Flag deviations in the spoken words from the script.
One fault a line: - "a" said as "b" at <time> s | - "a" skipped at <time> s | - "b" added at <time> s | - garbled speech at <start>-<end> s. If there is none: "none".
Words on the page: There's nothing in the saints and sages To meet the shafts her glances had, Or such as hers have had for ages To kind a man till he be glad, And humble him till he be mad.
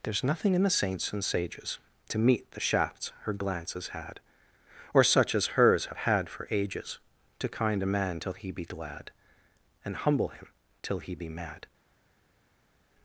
none